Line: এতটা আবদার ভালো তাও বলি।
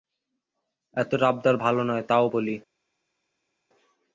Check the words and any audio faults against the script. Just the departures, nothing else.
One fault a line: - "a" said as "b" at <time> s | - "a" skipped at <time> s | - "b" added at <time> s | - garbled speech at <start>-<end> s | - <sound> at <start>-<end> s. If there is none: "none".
- "নয়" added at 1.8 s